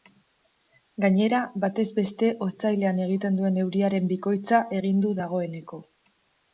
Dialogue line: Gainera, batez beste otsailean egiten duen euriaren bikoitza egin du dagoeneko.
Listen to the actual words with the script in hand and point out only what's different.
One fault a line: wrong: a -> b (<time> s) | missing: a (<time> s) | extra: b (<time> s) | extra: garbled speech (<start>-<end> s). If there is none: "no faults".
no faults